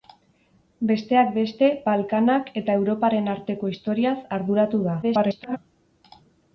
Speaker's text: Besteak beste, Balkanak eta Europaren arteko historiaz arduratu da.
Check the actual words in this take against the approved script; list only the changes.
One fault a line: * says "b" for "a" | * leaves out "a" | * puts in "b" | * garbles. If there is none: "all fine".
* garbles